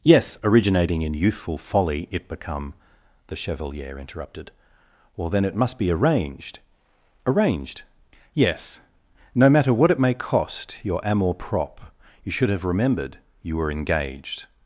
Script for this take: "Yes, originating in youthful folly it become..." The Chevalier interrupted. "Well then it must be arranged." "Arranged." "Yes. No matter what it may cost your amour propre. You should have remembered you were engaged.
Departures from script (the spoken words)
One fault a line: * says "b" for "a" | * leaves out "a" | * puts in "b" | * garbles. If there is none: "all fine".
all fine